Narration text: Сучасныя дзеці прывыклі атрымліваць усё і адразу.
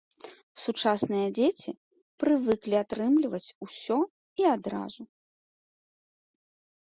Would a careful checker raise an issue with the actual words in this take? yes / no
no